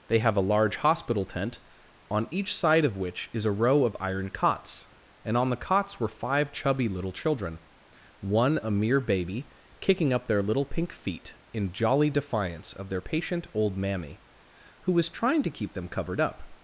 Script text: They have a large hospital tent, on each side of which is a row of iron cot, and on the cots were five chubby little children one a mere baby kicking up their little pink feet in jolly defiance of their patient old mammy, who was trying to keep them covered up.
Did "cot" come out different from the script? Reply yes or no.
yes